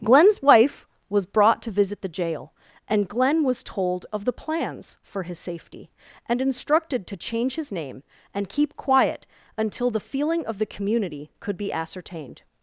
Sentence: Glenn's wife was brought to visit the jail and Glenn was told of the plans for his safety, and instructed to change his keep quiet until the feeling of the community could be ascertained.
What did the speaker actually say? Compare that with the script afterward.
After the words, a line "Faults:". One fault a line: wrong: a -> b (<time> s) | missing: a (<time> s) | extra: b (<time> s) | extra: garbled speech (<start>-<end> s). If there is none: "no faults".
Glenn's wife was brought to visit the jail and Glenn was told of the plans for his safety, and instructed to change his name and keep quiet until the feeling of the community could be ascertained.
Faults:
extra: name and (7.7 s)